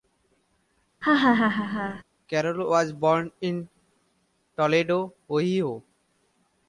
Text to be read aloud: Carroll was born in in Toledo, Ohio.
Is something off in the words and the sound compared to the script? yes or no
yes